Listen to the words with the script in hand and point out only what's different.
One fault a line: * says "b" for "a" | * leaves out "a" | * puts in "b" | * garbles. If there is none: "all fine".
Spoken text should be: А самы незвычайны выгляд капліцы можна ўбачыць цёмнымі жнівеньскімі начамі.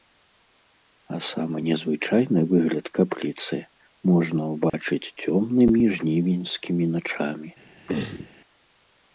all fine